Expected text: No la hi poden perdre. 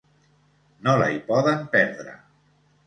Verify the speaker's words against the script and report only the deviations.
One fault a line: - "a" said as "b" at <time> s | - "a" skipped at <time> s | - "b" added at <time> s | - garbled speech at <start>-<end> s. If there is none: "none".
none